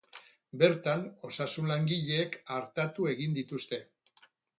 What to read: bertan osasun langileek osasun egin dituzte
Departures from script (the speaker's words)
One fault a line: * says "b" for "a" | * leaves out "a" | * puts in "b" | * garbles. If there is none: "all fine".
* says "artatu" for "osasun"